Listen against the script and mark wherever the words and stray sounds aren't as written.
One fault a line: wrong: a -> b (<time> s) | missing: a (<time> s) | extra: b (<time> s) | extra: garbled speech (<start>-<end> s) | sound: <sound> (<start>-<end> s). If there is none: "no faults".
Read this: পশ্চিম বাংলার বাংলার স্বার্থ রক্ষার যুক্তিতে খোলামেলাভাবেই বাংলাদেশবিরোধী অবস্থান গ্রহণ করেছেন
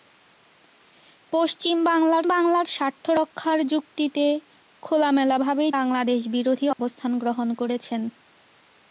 sound: dropout (6.7-6.8 s)